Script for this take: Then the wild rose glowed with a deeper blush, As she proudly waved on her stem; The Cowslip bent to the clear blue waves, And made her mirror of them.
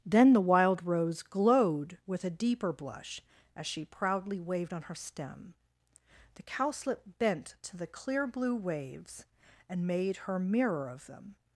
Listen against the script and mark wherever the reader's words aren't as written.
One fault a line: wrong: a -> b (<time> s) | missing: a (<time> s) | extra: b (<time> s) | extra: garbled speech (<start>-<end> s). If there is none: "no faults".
no faults